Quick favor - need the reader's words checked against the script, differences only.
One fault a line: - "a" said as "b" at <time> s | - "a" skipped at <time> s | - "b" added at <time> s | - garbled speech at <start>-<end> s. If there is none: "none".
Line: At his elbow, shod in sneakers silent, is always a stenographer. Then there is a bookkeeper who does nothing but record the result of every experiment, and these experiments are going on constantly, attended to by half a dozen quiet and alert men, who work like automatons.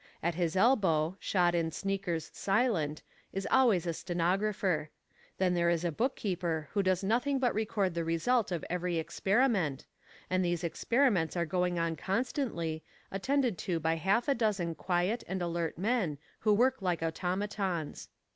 none